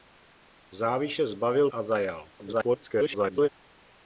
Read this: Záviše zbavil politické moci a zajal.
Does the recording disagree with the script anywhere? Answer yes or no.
yes